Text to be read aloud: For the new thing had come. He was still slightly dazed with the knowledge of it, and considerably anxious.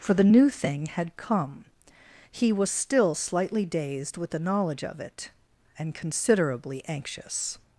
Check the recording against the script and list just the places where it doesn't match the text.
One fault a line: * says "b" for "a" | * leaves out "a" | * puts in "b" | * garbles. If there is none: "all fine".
all fine